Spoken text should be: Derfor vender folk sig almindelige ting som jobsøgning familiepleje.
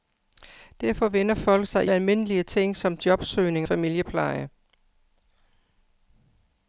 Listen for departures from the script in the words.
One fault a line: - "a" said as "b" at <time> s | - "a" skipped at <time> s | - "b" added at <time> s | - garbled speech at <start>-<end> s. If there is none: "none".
none